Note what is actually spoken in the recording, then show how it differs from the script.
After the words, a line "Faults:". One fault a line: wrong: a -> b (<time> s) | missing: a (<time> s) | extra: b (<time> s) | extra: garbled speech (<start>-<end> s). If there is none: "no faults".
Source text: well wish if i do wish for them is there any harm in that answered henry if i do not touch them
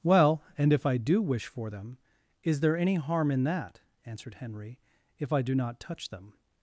well and if i do wish for them is there any harm in that answered henry if i do not touch them
Faults:
wrong: wish -> and (0.6 s)